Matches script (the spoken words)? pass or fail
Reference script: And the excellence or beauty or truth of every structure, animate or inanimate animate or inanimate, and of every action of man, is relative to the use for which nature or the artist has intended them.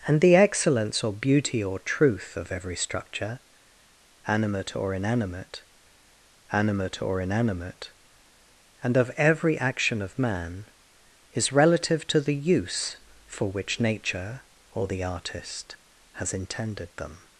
pass